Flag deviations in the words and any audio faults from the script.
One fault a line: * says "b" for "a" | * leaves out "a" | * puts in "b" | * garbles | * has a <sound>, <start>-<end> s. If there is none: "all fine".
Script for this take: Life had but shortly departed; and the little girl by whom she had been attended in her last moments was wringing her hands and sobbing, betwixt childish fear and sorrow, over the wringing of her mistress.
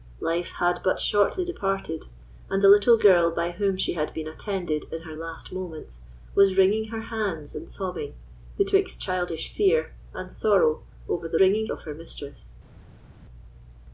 all fine